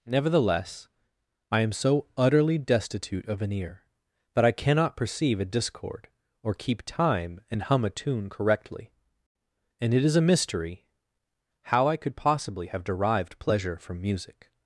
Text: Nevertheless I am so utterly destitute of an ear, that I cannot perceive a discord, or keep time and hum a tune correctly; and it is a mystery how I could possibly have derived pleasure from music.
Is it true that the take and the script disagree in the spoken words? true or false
false